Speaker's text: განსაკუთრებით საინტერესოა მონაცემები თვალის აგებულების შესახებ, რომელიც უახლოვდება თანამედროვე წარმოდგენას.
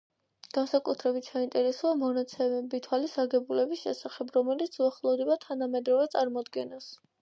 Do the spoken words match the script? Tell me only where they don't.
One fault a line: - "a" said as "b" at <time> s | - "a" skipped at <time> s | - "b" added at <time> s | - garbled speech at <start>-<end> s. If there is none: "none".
none